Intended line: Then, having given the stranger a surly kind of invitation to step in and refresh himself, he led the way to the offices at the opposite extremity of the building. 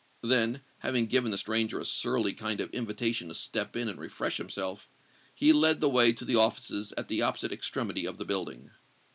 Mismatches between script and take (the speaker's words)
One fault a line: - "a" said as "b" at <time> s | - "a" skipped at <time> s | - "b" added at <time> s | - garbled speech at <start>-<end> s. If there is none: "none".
none